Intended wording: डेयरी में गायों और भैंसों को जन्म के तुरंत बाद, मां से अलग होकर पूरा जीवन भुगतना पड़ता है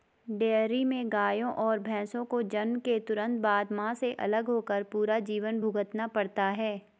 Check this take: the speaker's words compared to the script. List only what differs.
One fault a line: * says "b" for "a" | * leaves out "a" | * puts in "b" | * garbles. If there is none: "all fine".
all fine